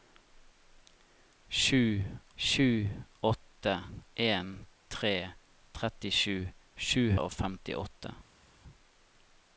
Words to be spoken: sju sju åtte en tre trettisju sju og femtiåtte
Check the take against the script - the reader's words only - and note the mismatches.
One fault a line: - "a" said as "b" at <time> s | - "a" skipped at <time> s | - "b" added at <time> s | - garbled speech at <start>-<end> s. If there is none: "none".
none